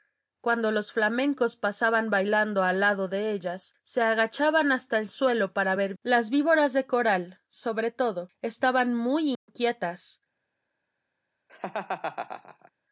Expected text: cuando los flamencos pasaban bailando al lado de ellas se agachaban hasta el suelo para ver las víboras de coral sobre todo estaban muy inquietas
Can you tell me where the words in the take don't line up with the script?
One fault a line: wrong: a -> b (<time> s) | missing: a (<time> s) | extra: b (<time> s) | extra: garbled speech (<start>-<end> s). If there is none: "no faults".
no faults